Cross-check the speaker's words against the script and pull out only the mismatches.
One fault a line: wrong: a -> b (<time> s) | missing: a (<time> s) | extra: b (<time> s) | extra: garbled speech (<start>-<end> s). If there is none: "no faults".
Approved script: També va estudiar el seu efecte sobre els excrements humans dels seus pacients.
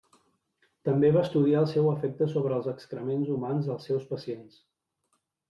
no faults